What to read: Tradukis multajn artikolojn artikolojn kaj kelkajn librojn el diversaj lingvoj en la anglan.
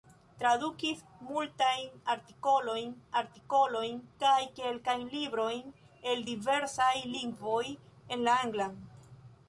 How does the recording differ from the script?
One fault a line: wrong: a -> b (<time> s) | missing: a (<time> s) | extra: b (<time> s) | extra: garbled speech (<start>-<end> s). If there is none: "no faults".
no faults